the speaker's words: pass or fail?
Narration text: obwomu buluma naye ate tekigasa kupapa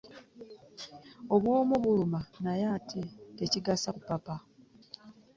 pass